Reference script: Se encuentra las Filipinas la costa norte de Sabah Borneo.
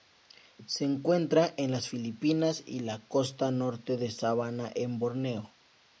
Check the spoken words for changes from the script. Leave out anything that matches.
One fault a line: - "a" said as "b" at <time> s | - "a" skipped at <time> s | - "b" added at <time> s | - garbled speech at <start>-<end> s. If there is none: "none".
- "en" added at 1.6 s
- "y" added at 2.6 s
- "en" added at 4.7 s